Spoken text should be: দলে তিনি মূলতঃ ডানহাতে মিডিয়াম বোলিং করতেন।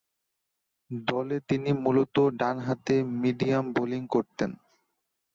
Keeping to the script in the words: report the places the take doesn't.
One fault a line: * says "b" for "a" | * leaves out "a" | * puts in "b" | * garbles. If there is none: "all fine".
all fine